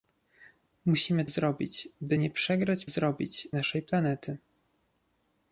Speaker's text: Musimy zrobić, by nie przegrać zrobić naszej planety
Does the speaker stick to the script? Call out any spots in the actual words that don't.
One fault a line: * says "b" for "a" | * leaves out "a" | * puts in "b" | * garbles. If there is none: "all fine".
all fine